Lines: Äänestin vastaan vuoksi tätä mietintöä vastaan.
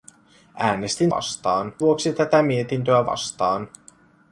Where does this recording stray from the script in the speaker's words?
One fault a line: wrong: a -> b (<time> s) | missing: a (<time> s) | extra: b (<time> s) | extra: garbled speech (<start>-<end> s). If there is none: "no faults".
no faults